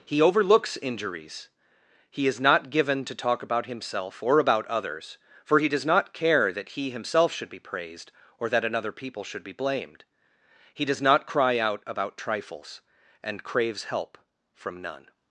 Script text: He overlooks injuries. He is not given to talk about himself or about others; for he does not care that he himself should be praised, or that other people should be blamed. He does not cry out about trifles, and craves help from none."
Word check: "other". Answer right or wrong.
wrong